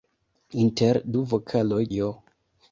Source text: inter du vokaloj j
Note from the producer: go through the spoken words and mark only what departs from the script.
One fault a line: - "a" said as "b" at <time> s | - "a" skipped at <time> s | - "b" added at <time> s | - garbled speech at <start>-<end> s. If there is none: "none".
none